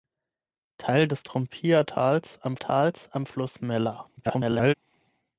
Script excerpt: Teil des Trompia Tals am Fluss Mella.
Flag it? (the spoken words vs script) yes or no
yes